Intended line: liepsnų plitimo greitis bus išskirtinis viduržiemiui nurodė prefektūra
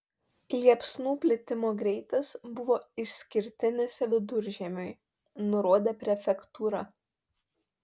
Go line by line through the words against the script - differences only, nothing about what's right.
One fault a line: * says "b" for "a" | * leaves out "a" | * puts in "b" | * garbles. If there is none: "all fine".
* says "buvo" for "bus"